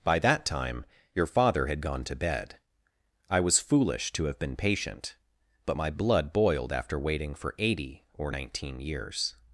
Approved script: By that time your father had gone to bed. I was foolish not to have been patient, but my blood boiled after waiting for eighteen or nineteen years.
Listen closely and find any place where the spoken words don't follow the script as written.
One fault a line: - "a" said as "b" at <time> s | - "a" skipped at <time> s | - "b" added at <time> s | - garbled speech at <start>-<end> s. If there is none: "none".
- "not" skipped at 4.1 s
- "eighteen" said as "eighty" at 7.6 s